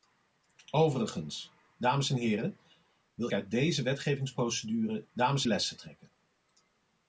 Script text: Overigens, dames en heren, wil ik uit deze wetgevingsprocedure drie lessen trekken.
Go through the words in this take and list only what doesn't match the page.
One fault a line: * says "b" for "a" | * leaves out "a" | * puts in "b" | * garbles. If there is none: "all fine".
* leaves out "ik"
* says "dames" for "drie"